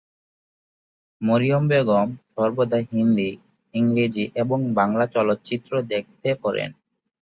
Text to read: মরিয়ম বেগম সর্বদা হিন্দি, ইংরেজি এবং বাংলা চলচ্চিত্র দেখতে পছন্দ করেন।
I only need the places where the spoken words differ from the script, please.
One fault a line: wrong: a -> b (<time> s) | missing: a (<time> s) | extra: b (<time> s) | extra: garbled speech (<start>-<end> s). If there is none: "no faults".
missing: পছন্দ (6.3 s)